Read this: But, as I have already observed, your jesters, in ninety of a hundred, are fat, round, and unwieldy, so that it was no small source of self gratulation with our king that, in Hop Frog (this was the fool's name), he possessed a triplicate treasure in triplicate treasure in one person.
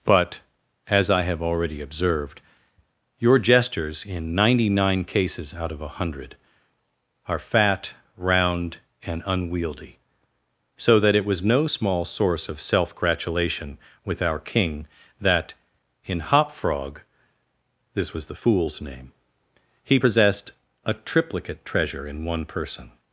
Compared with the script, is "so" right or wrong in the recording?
right